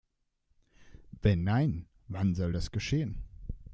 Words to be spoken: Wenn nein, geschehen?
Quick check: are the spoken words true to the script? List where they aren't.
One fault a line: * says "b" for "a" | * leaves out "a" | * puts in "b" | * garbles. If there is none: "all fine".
* puts in "wann soll das"